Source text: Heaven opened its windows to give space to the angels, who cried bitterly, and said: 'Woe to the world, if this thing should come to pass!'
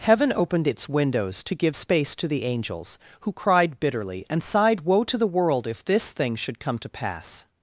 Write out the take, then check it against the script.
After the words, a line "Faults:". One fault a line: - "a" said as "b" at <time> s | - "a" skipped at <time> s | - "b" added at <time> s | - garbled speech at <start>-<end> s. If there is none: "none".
Heaven opened its windows to give space to the angels, who cried bitterly, and sighed: 'Woe to the world, if this thing should come to pass!'
Faults:
- "said" said as "sighed" at 4.4 s